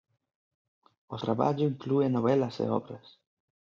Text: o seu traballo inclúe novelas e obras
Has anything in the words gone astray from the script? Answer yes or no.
yes